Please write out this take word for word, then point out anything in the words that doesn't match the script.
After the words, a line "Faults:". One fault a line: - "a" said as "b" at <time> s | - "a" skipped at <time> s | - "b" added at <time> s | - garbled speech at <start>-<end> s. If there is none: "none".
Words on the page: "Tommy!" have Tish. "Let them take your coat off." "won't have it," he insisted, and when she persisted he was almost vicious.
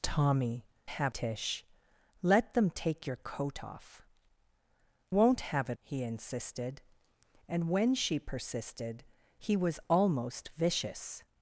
"Tommy!" have Tish. "Let them take your coat off." "won't have it," he insisted, and when she persisted he was almost vicious.
Faults:
none